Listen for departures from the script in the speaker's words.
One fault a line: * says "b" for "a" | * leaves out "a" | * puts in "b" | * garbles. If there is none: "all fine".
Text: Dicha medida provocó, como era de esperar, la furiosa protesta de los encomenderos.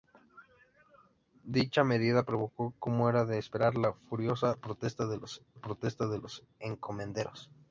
* puts in "protesta de los"